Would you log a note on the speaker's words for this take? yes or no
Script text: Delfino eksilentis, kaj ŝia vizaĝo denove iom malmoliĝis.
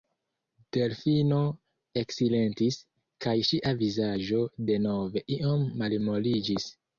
no